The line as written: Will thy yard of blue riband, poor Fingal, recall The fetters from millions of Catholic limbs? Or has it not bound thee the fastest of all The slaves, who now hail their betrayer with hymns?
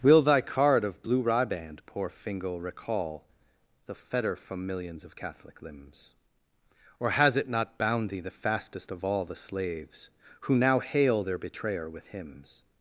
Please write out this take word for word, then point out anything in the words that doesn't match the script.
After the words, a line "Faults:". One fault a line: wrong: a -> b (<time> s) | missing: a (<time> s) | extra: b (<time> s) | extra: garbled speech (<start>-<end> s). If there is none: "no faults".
Will thy card of blue riband, poor Fingal, recall The fetter from millions of Catholic limbs? Or has it not bound thee the fastest of all The slaves, who now hail their betrayer with hymns?
Faults:
wrong: yard -> card (0.4 s)
wrong: fetters -> fetter (3.9 s)